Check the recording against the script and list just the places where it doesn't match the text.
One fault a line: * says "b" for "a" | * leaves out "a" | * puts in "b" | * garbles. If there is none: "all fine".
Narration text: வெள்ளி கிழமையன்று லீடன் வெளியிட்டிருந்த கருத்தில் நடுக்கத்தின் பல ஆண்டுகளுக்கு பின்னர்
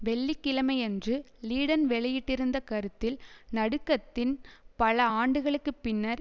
all fine